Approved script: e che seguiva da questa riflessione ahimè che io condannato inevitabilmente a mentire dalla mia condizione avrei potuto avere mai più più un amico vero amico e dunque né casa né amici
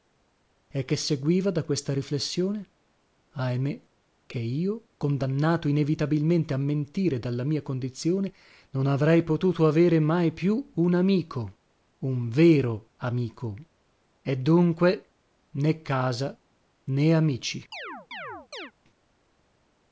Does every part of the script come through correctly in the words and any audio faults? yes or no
no